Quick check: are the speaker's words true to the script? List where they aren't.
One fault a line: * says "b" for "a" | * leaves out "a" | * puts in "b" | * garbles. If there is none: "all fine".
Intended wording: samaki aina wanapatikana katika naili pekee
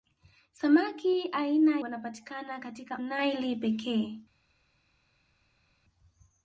all fine